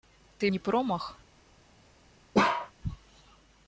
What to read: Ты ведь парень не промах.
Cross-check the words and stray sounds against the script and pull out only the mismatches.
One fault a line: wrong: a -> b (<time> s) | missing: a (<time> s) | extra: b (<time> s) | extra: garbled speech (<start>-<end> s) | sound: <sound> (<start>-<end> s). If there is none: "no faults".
missing: ведь парень (0.5 s)
sound: bark (2.3-2.7 s)